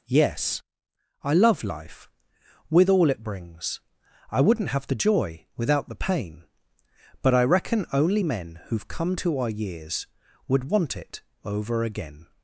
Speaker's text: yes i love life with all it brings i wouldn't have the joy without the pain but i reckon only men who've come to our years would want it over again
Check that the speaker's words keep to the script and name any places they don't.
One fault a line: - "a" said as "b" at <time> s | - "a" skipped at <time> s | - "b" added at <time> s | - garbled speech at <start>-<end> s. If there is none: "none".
none